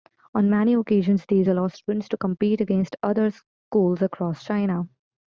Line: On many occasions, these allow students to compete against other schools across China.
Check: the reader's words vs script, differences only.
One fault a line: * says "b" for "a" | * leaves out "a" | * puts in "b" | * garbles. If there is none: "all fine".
all fine